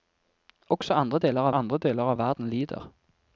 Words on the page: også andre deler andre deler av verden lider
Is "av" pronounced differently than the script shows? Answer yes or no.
no